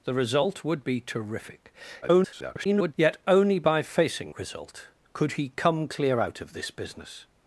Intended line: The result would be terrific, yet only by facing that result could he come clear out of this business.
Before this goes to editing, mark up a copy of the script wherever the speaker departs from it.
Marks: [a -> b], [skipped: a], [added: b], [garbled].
The result would be terrific, [garbled] yet only by facing [skipped: that] result could he come clear out of this business.